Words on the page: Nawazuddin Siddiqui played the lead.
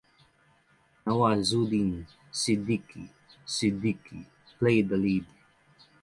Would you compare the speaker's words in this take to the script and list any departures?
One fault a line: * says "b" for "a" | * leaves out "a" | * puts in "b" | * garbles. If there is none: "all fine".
* puts in "Siddiqui"